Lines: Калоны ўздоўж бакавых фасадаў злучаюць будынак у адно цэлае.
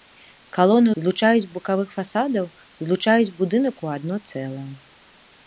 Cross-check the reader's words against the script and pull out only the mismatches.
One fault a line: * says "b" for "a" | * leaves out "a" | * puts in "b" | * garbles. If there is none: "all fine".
* says "злучаюць" for "ўздоўж"